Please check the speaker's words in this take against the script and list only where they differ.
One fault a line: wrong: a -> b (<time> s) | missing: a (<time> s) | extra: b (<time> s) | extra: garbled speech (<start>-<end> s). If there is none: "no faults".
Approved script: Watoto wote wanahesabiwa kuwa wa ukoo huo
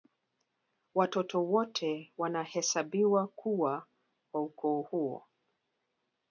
no faults